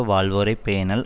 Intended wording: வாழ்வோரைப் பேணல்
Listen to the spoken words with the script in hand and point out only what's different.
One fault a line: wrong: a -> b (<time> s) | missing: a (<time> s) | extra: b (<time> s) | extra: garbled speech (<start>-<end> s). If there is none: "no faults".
no faults